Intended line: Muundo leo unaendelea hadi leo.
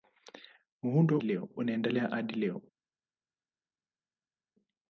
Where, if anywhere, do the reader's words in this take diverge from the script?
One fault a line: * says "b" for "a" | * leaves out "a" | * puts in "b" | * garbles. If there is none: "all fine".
all fine